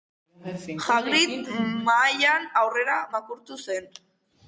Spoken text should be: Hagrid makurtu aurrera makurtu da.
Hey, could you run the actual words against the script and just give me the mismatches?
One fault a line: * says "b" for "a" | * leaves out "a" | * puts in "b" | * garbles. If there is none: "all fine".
* says "mahaian" for "makurtu"
* says "zen" for "da"